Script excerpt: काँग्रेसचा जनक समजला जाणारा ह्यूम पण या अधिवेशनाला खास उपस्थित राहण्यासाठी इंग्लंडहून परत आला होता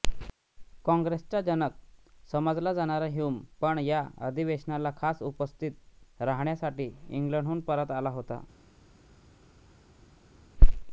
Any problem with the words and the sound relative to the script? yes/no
no